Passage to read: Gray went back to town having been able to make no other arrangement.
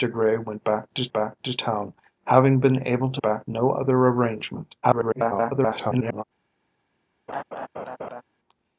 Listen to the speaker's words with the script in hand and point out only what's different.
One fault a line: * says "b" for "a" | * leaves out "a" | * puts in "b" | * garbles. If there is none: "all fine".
* puts in "back to"
* says "back" for "make"
* garbles